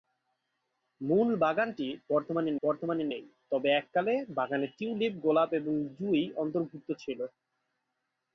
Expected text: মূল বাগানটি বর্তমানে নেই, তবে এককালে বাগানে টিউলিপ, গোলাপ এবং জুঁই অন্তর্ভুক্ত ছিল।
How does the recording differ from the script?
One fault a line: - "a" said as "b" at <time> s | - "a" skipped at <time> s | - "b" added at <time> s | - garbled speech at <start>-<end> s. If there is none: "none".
- "বর্তমানে" added at 2.6 s